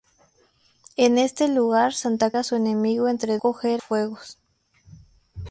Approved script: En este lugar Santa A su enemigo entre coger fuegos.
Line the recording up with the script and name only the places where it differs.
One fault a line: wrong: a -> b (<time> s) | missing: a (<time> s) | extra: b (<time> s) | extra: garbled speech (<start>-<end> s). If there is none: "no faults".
no faults